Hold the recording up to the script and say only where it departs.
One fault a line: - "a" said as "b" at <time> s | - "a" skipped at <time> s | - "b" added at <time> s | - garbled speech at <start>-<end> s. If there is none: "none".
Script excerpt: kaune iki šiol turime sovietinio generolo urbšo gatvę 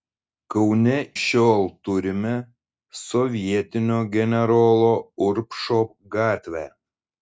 - "iki" skipped at 0.9 s